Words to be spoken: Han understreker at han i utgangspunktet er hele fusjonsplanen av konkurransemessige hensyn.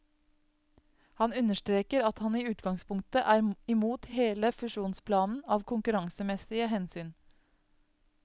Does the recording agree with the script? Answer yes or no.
no